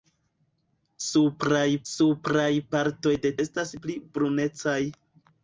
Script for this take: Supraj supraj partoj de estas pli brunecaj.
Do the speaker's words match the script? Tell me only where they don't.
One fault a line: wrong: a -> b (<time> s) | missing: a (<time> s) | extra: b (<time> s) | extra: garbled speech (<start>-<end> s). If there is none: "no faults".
no faults